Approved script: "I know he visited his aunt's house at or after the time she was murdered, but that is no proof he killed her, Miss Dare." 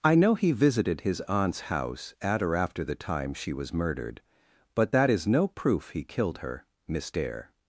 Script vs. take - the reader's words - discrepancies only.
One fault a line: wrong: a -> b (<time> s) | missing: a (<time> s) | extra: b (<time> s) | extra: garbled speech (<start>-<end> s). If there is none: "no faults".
no faults